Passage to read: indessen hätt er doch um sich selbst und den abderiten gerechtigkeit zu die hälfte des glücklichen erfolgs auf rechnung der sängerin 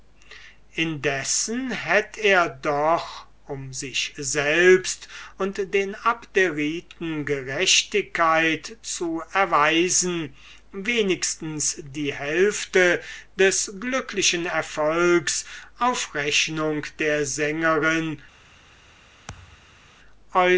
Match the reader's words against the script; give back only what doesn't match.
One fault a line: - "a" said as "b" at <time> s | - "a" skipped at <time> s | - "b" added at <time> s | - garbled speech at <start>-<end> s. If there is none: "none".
- "erweisen wenigstens" added at 9.3 s